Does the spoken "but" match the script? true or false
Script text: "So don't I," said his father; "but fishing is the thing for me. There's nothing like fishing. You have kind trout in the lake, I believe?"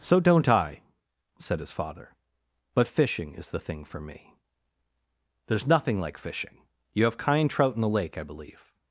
true